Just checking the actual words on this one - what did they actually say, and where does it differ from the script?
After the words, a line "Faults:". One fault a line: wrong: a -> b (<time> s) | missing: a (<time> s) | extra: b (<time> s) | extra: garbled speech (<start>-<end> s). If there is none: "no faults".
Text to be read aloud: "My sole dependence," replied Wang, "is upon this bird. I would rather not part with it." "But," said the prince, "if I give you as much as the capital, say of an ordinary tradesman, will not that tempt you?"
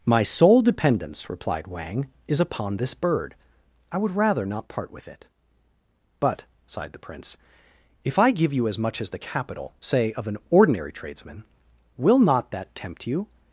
"My sole dependence," replied Wang, "is upon this bird. I would rather not part with it." "But," sighed the prince, "if I give you as much as the capital, say of an ordinary tradesman, will not that tempt you?"
Faults:
wrong: said -> sighed (6.7 s)